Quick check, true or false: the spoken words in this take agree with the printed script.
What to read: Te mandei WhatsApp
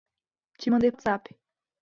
true